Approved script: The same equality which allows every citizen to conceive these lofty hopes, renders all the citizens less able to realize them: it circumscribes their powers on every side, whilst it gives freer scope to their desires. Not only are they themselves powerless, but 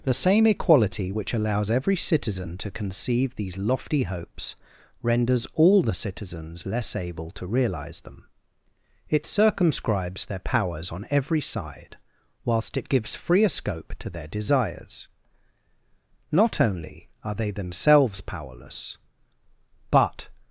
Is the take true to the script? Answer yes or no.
yes